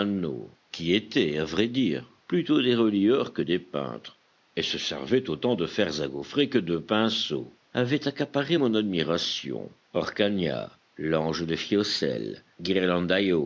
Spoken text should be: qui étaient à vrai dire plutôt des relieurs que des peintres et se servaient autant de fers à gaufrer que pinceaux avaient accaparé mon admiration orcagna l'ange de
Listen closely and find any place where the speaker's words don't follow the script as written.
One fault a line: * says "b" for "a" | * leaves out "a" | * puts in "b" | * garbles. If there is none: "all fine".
* puts in "de"